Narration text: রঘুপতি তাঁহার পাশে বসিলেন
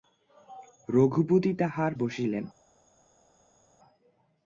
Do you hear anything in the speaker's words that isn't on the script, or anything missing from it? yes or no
yes